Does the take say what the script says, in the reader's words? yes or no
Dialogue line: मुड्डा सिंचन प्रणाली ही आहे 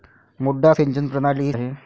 yes